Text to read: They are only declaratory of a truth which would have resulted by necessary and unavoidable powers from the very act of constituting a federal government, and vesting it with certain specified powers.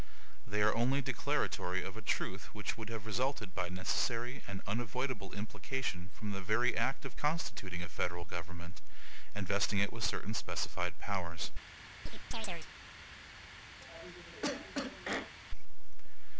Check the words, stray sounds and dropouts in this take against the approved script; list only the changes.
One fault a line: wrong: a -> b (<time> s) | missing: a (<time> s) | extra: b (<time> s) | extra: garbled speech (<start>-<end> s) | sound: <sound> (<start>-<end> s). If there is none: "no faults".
wrong: powers -> implication (5.3 s)
sound: chirp (12.1-12.7 s)
sound: cough (13.8-15.3 s)